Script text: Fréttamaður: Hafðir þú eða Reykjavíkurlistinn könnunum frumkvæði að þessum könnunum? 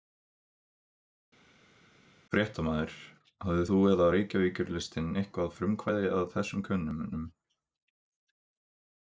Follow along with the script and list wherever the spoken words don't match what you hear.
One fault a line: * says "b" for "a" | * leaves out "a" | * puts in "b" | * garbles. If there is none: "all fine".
* says "eitthvað" for "könnunum"